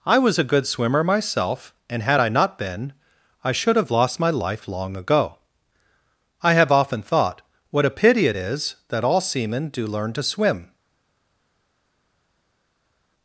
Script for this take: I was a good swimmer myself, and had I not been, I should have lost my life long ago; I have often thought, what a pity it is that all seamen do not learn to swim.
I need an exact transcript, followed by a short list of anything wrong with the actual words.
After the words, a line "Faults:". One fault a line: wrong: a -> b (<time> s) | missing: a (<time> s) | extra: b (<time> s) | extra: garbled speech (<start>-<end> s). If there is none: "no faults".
I was a good swimmer myself, and had I not been, I should have lost my life long ago; I have often thought, what a pity it is that all seamen do learn to swim.
Faults:
missing: not (9.9 s)